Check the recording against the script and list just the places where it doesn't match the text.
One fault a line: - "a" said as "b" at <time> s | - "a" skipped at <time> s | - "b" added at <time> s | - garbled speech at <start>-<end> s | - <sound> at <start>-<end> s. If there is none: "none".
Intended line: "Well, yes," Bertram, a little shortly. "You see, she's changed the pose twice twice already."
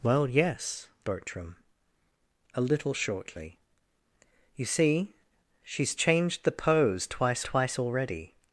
none